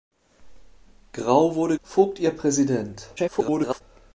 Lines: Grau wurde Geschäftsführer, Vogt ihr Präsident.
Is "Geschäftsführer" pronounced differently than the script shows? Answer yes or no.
yes